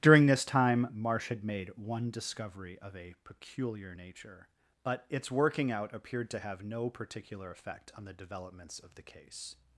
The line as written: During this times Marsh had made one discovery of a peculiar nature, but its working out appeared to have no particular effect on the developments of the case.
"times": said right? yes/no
no